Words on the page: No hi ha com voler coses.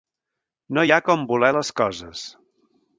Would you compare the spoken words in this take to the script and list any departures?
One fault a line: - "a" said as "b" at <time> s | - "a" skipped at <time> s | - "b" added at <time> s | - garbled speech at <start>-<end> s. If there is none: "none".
- "les" added at 1.6 s